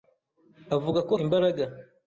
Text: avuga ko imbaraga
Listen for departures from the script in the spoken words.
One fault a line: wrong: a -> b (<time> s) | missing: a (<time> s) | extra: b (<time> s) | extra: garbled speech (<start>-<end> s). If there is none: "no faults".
no faults